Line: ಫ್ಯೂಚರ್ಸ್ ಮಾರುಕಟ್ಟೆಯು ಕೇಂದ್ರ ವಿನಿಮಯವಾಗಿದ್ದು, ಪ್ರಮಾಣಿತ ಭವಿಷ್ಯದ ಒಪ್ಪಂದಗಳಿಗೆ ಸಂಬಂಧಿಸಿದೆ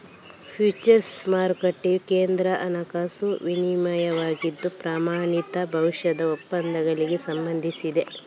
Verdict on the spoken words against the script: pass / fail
fail